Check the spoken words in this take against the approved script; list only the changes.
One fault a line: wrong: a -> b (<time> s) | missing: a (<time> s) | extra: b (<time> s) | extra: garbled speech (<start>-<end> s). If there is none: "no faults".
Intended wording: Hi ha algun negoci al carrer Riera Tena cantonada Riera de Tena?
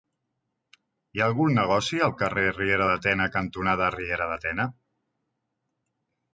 extra: de (2.9 s)